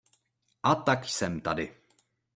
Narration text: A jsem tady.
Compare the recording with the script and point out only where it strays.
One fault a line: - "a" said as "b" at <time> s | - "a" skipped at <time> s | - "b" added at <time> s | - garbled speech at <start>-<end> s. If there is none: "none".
- "tak" added at 0.8 s